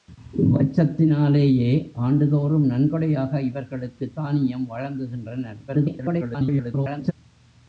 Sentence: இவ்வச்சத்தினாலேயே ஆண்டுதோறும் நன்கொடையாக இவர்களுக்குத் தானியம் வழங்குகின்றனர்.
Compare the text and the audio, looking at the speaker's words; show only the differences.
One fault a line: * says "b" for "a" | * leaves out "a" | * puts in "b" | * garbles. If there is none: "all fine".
* garbles